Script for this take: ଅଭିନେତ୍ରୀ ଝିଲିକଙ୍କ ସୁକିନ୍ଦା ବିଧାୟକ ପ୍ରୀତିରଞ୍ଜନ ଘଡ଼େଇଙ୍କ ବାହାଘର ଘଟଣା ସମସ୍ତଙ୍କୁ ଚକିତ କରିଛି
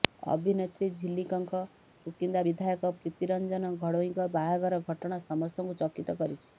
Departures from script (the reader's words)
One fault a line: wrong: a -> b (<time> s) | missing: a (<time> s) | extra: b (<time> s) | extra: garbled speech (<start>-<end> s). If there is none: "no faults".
no faults